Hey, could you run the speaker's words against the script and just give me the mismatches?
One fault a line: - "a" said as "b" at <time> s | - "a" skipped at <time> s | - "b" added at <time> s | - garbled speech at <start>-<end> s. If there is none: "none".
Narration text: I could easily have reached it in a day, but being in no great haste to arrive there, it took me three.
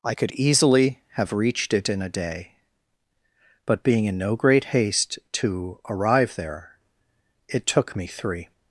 none